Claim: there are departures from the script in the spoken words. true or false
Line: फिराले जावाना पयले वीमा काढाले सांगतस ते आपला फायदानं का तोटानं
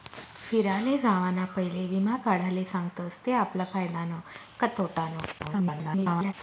true